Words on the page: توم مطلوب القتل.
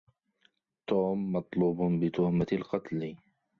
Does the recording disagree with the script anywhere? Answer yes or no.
yes